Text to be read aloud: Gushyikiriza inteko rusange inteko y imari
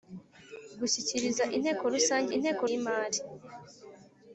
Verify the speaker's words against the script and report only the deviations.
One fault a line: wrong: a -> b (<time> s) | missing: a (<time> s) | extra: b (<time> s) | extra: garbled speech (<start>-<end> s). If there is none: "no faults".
no faults